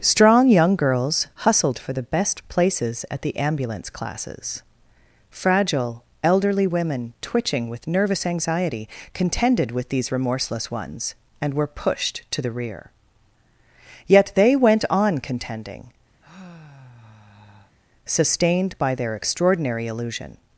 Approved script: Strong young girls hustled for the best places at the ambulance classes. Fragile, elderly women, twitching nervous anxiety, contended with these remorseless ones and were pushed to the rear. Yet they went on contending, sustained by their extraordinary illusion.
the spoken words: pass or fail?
fail